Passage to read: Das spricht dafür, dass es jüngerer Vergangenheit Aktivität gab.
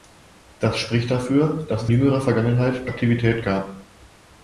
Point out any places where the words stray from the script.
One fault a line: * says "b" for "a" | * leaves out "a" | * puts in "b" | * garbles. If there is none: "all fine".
all fine